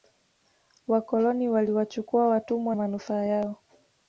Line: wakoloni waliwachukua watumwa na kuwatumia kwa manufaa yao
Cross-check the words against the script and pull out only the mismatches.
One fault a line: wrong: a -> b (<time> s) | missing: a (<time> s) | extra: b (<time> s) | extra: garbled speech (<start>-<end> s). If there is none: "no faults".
missing: na kuwatumia kwa (2.8 s)